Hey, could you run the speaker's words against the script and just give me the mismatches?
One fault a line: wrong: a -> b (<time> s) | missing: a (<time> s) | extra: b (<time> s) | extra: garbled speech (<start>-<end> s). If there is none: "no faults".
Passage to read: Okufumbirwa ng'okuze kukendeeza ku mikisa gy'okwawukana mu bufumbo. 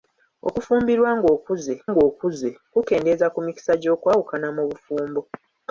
extra: ng'okuze (1.9 s)